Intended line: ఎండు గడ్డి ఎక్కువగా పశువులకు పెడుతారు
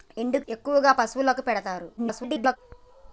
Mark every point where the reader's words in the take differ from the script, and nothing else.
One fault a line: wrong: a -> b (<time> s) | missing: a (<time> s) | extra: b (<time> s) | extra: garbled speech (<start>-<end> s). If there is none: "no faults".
missing: గడ్డి (0.4 s)
extra: garbled speech (2.0-2.6 s)